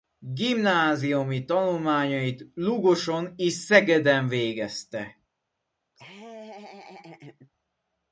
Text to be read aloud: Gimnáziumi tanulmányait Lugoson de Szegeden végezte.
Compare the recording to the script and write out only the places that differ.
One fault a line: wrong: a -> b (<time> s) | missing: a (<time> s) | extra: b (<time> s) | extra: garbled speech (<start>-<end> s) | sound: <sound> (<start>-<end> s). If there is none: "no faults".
wrong: de -> és (3.4 s)
sound: laugh (6.0-7.5 s)